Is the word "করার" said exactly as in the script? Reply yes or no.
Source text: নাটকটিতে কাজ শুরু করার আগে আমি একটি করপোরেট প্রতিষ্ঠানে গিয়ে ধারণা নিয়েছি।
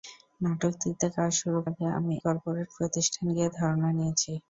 no